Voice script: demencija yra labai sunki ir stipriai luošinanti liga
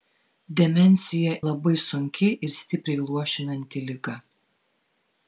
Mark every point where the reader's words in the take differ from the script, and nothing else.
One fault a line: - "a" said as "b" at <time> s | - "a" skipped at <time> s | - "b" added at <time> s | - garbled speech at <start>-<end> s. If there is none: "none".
- "yra" skipped at 1.3 s